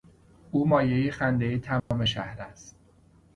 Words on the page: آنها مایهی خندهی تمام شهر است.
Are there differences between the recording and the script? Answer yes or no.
yes